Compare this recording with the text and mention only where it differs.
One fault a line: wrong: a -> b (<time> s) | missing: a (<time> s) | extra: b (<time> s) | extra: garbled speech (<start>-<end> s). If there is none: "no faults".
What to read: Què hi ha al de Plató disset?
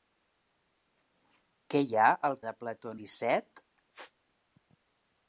no faults